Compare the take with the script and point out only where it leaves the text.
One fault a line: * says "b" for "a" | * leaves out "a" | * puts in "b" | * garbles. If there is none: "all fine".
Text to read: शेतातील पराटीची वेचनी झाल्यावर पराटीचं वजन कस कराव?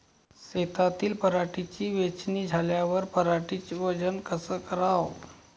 all fine